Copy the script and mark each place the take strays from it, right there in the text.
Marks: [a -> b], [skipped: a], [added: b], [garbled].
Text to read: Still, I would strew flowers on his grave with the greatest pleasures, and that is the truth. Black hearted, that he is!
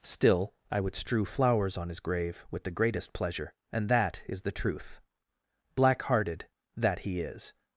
Still, I would strew flowers on his grave with the greatest [pleasures, -> pleasure] and that is the truth. Black hearted, that he is!